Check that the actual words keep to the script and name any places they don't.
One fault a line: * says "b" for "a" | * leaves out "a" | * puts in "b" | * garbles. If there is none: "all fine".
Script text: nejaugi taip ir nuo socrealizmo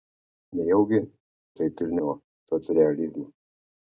all fine